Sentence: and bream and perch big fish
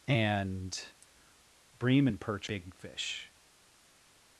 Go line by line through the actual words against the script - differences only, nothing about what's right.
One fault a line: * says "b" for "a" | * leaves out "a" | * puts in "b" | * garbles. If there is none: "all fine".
all fine